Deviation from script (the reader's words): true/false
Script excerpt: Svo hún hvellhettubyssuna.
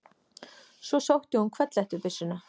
true